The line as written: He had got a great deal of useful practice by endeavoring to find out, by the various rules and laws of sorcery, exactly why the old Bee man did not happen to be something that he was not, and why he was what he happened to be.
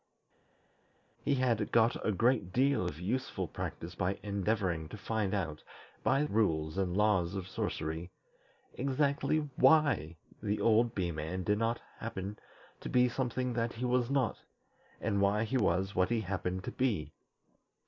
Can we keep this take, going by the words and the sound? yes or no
no